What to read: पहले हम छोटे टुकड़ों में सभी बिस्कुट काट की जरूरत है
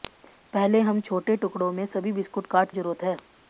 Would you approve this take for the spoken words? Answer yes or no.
no